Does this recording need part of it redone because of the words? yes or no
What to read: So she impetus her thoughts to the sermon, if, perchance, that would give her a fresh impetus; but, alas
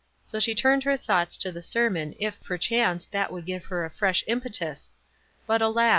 yes